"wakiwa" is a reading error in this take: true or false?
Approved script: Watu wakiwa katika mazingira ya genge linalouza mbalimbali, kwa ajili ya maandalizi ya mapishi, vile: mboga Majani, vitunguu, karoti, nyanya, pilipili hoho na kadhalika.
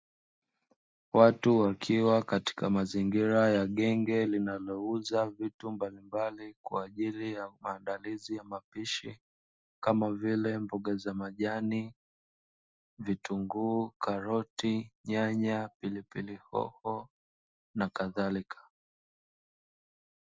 false